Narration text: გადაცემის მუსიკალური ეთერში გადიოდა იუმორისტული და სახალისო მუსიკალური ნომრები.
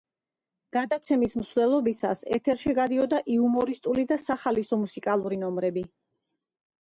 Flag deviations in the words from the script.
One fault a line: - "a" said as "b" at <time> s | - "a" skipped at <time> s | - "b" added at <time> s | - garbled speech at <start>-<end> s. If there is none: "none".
- "მუსიკალური" said as "მსვლელობისას" at 1.4 s